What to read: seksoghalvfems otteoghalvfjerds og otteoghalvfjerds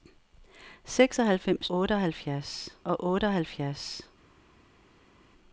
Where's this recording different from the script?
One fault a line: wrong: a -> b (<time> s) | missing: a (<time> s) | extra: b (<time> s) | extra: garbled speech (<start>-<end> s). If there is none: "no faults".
no faults